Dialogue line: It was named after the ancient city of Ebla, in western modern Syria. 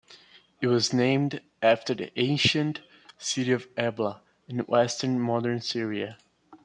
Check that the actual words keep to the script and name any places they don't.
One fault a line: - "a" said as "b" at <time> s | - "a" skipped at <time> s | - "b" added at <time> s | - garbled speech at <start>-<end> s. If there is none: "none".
none